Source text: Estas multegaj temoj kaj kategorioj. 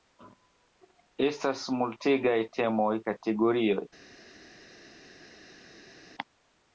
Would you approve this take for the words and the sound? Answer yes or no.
no